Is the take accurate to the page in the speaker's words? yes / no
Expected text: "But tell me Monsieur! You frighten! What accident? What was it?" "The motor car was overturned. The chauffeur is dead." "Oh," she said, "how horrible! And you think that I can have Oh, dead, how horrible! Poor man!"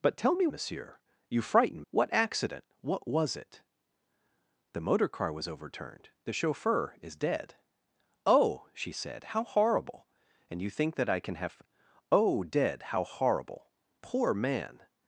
yes